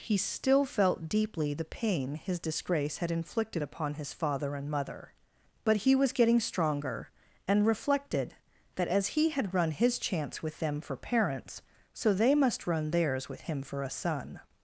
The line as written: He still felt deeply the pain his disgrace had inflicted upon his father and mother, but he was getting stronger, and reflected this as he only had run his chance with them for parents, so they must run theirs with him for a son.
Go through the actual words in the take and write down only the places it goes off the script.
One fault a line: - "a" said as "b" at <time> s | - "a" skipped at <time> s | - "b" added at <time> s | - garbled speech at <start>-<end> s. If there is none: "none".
- "this" said as "that" at 8.8 s
- "only" skipped at 9.3 s